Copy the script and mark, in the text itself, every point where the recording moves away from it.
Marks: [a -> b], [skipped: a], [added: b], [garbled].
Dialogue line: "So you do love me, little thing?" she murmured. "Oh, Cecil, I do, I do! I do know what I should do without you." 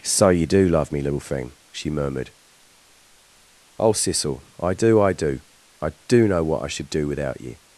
"So you do love me, little thing?" she murmured. "Oh, Cecil, I do, I do! I do know what I should do without you."